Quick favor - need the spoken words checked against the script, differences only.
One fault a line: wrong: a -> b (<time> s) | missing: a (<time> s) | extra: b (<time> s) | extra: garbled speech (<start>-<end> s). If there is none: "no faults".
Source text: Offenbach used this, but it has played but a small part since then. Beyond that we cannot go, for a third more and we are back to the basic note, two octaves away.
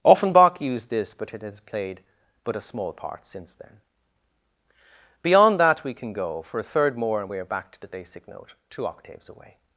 wrong: cannot -> can (5.9 s)